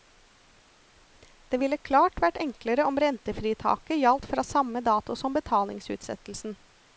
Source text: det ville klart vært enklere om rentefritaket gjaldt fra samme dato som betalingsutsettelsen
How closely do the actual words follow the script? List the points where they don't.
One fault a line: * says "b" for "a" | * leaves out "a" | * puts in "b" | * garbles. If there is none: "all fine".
all fine